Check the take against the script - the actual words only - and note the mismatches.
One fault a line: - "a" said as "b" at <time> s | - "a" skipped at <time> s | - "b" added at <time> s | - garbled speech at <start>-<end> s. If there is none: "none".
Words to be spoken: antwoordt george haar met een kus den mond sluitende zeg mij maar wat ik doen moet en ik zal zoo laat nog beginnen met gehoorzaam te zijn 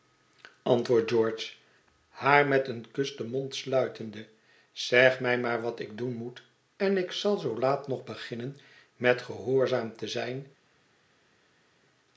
none